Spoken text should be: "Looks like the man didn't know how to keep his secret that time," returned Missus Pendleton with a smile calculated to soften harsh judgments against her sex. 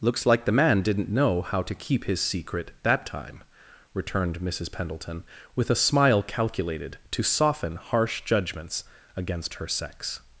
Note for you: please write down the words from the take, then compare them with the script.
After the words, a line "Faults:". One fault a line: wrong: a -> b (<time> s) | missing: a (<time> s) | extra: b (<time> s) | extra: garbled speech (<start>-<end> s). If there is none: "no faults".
"Looks like the man didn't know how to keep his secret that time," returned Missus Pendleton with a smile calculated to soften harsh judgments against her sex.
Faults:
no faults